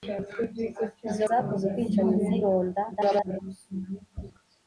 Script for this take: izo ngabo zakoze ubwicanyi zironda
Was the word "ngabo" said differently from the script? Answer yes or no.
yes